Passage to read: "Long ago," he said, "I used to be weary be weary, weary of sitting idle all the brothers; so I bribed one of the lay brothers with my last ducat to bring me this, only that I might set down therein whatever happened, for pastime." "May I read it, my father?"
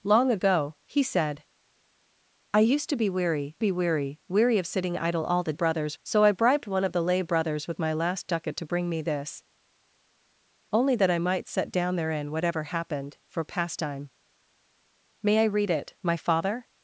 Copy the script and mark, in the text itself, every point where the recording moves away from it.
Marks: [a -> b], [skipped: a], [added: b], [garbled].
"Long ago," he said, "I used to be weary be weary, weary of sitting idle all the brothers; so I bribed one of the lay brothers with my last ducat to bring me this, only that I might set down therein whatever happened, for pastime." "May I read it, my father?"